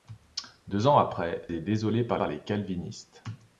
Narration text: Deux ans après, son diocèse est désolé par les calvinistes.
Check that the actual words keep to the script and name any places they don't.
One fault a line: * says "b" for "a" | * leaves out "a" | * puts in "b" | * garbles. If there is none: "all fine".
* leaves out "son diocèse"
* puts in "par"